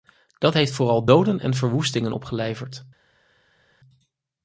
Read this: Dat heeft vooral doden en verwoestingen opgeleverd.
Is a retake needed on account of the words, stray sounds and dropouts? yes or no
no